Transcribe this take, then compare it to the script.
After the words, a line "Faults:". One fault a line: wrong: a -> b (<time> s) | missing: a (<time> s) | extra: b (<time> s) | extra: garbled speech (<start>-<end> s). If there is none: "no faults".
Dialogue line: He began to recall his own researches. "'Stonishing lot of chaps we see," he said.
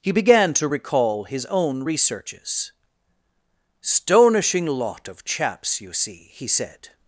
He began to recall his own researches. "'Stonishing lot of chaps you see," he said.
Faults:
wrong: we -> you (5.8 s)